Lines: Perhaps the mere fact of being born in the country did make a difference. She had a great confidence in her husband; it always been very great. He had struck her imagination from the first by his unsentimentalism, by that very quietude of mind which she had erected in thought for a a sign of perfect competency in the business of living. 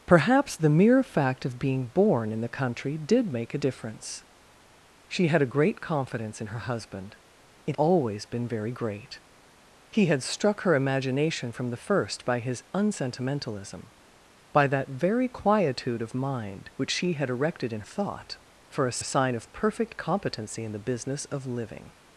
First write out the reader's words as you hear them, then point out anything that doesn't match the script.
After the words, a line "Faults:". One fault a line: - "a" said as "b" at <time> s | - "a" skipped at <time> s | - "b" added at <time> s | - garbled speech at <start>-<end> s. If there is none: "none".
Perhaps the mere fact of being born in the country did make a difference. She had a great confidence in her husband; it always been very great. He had struck her imagination from the first by his unsentimentalism, by that very quietude of mind which she had erected in thought for a a sign of perfect competency in the business of living.
Faults:
none